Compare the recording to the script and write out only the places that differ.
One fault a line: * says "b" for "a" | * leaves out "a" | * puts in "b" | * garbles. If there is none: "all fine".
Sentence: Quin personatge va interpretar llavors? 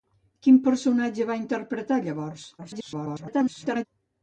* garbles